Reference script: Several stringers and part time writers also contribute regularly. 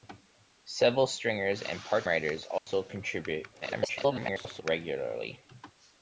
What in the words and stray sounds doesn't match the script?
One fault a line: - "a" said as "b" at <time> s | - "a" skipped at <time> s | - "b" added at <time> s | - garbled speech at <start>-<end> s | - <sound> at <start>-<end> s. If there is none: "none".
- "time" skipped at 2.1 s
- dropout at 2.6-2.7 s
- garbled speech at 3.6-4.6 s